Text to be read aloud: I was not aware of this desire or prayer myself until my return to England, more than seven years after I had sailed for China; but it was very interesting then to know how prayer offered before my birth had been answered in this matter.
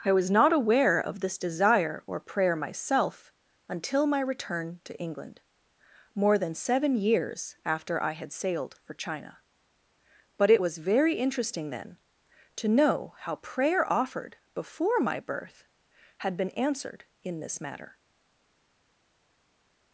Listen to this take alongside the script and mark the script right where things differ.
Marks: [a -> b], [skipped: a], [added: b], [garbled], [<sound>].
I was not aware of this desire or prayer myself until my return to England, more than seven years after I had sailed for China; but it was very interesting then to know how prayer offered before my birth had been answered in this matter.